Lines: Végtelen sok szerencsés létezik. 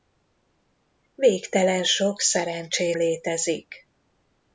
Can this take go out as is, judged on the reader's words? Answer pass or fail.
pass